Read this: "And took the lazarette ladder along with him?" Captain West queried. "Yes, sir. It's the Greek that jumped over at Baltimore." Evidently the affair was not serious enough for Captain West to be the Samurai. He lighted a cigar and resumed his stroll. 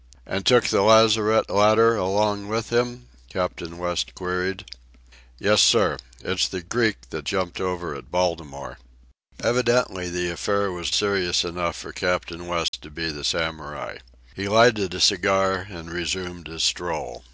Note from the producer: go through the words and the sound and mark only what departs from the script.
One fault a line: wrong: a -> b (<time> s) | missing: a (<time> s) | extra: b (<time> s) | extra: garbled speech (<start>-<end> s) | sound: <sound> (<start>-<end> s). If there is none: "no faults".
missing: not (10.9 s)
sound: dropout (12.7-12.7 s)